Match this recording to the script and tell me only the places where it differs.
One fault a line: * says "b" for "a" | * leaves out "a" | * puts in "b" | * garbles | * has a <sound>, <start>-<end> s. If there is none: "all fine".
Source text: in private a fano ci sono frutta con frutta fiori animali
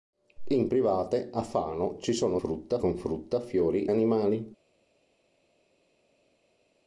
all fine